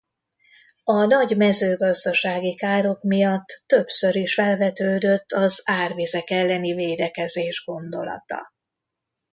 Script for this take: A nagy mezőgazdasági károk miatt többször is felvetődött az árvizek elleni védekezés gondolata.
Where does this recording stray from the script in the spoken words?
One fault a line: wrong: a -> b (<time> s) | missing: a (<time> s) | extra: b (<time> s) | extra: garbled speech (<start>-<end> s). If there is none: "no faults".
no faults